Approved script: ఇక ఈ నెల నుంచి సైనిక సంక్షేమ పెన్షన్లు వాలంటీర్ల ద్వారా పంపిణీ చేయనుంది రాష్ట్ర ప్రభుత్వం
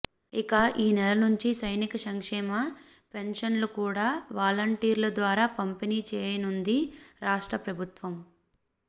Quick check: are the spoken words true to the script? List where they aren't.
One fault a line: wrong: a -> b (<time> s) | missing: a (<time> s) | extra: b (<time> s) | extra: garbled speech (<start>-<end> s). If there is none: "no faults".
extra: కూడా (3.8 s)